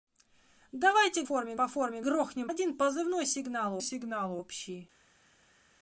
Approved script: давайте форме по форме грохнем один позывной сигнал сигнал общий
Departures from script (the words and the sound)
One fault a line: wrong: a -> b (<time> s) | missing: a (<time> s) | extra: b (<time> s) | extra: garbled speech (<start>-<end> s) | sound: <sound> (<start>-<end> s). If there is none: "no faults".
no faults